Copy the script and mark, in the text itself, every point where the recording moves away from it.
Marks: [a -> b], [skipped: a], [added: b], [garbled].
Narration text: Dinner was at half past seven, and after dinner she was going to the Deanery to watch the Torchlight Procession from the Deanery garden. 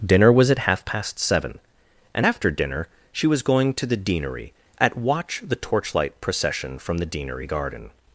Dinner was at half past seven, and after dinner she was going to the Deanery [to -> at] watch the Torchlight Procession from the Deanery garden.